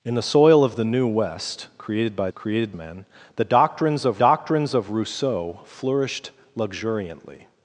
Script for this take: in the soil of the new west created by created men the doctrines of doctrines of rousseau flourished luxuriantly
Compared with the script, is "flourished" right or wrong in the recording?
right